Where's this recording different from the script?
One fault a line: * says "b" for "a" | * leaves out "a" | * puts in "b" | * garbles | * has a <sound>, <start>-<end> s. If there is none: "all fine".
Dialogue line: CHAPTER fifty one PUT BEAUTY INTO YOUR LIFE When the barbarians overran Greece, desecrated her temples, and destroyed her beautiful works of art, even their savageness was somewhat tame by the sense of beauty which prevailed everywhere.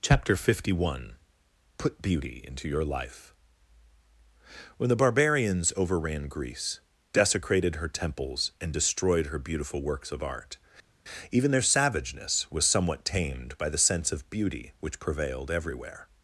* says "tamed" for "tame"